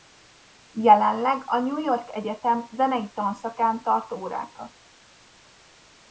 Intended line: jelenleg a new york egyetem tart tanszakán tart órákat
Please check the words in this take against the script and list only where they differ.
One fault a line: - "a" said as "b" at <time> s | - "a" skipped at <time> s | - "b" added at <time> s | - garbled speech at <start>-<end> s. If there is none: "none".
- "tart" said as "zenei" at 2.7 s